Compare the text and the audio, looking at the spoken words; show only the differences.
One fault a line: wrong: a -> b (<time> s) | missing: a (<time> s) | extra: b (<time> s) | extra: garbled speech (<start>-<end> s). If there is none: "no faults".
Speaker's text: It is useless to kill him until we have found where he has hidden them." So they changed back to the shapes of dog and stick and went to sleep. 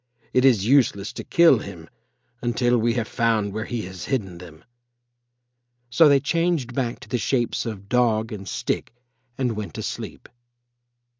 no faults